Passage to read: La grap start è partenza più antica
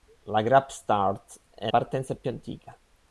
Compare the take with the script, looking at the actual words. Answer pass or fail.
pass